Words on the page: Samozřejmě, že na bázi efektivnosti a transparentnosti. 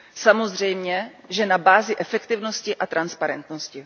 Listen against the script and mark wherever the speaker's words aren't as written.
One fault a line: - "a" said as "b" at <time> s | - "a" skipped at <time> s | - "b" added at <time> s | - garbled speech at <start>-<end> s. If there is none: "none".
none